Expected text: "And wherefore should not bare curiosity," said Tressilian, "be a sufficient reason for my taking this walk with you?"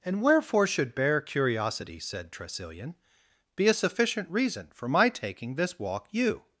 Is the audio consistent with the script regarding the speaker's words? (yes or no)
no